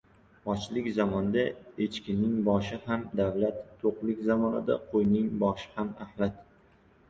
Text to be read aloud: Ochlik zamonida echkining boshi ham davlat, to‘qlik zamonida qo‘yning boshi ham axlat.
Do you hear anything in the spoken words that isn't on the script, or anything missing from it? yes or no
no